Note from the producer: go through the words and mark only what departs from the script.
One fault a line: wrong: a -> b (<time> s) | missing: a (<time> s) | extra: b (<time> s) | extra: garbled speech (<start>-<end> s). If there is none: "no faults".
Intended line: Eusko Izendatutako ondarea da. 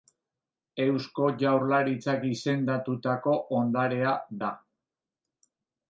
extra: Jaurlaritzak (1.4 s)